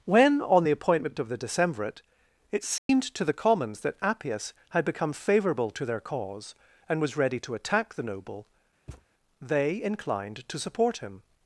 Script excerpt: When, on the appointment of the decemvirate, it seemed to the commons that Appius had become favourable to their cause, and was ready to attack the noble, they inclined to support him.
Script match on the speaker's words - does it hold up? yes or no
yes